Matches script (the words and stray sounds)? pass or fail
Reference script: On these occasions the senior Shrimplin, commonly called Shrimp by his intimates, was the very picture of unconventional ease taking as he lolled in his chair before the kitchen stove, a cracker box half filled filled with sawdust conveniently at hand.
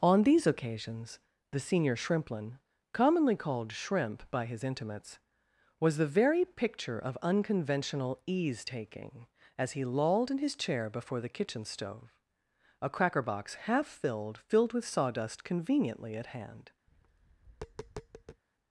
fail